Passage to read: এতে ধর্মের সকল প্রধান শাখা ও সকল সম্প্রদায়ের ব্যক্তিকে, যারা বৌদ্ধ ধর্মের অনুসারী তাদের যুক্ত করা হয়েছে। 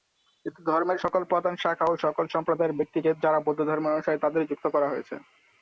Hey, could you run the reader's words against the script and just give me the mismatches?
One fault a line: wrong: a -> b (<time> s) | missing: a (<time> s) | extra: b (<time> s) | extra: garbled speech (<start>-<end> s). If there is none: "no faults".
no faults